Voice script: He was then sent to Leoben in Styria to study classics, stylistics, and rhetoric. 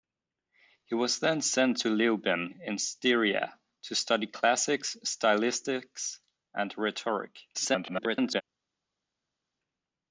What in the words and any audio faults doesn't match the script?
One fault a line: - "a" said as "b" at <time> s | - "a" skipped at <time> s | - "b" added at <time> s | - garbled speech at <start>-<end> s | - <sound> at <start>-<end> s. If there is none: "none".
- garbled speech at 7.5-8.4 s